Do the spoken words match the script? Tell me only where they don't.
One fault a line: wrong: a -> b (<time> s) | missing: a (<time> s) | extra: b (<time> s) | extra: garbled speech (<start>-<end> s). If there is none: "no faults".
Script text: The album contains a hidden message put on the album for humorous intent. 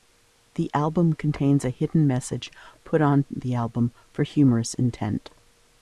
no faults